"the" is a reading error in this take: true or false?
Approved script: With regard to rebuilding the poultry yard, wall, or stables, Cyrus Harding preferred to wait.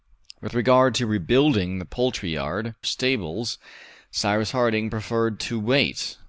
false